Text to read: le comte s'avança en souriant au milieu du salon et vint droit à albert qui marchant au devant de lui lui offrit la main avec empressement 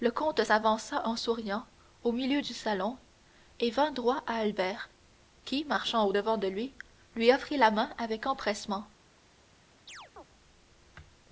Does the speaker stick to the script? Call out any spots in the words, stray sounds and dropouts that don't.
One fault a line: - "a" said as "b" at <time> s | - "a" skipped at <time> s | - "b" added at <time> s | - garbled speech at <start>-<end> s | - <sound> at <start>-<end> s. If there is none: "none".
- chirp at 9.9-10.2 s